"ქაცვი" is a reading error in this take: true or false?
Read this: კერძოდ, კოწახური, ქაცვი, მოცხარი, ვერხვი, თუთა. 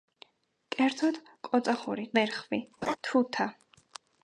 true